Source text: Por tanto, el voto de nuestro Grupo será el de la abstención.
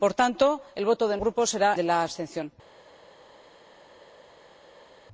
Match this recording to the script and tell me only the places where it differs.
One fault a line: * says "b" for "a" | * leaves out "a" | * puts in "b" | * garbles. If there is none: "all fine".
* leaves out "nuestro"
* leaves out "el"